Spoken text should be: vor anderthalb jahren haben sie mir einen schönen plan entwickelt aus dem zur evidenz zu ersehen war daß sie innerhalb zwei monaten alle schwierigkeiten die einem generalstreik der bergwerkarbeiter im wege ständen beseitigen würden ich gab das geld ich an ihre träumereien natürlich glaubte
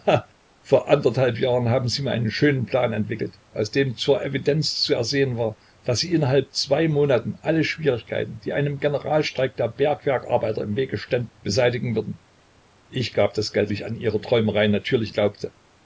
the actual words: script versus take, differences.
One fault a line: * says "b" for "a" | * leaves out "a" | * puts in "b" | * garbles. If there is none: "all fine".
all fine